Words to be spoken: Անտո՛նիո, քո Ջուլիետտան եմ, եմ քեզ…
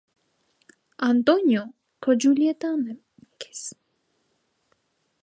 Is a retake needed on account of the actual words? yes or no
no